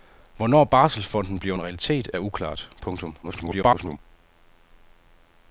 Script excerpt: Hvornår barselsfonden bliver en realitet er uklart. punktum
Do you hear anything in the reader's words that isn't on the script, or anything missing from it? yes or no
yes